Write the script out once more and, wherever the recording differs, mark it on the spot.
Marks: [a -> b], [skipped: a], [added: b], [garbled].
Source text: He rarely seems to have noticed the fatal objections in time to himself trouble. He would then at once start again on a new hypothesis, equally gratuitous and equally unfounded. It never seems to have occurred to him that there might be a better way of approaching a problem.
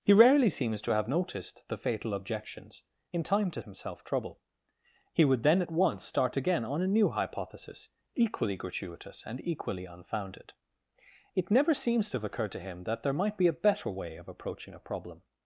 He rarely seems to have noticed the fatal objections in time to himself trouble. He would then at once start again on a new hypothesis, equally gratuitous and equally unfounded. It never seems to have occurred to him that there might be a better way of approaching a problem.